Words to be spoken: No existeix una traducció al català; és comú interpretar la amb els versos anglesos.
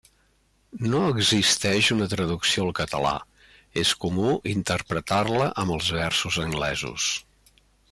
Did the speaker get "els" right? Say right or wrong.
right